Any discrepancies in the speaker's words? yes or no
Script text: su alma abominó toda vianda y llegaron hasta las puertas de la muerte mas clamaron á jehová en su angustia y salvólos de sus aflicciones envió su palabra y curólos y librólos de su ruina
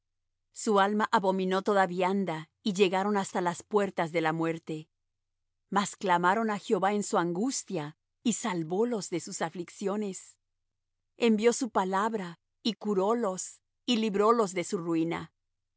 no